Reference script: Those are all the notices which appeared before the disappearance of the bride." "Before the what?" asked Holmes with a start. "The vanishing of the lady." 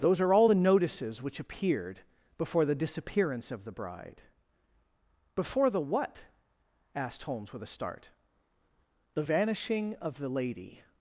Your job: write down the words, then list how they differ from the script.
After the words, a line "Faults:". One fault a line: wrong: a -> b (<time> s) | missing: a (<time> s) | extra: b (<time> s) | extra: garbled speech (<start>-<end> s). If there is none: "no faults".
Those are all the notices which appeared before the disappearance of the bride." "Before the what?" asked Holmes with a start. "The vanishing of the lady."
Faults:
no faults